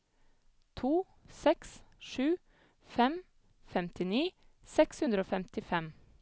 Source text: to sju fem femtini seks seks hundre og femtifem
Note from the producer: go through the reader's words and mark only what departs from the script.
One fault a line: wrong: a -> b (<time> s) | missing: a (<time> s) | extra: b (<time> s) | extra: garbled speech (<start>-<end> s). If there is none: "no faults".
extra: seks (1.4 s)
missing: seks (5.0 s)